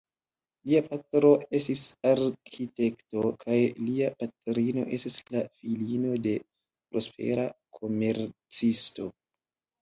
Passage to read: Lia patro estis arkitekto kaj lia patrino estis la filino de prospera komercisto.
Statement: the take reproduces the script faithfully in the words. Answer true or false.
true